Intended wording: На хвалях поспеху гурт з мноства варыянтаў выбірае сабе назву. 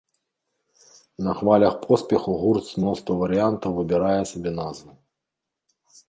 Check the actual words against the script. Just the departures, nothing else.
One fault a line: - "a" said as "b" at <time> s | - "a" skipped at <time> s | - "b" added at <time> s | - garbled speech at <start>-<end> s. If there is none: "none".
none